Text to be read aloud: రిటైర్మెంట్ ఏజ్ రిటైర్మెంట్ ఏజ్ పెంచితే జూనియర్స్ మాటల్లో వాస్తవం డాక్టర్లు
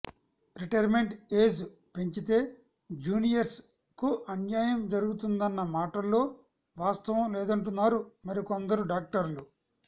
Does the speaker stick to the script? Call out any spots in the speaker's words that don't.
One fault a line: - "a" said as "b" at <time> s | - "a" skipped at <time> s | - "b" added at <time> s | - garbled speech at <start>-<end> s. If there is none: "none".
- "రిటైర్మెంట్ ఏజ్ పెంచితే జూనియర్స్" said as "పెంచితే జూనియర్స్ కు అన్యాయం జరుగుతుందన్న" at 2.0 s
- "లేదంటున్నారు మరికొందరు" added at 7.4 s